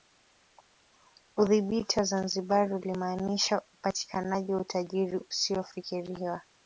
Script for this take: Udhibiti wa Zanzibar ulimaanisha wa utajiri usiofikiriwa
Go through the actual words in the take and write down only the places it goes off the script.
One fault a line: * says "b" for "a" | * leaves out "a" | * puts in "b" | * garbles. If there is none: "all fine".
* puts in "upatikanaji"